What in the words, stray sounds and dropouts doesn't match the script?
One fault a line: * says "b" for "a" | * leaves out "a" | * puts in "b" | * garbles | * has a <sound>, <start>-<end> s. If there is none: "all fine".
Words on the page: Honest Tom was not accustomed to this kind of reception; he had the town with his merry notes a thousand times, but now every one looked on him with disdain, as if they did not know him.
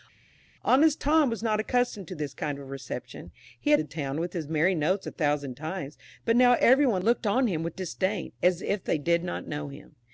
all fine